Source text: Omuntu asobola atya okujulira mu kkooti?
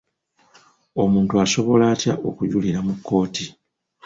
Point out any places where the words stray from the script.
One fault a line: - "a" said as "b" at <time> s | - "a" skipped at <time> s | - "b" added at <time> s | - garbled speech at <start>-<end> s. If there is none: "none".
none